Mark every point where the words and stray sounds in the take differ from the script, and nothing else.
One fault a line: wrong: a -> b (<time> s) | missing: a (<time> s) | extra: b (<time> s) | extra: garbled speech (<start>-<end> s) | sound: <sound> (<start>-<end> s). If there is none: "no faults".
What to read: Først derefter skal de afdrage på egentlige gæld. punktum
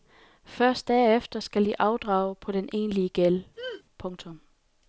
extra: den (2.5 s)
sound: throat clearing (3.6-3.8 s)